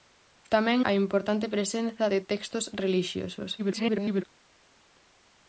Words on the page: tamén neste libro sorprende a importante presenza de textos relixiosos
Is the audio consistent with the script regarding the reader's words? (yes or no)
no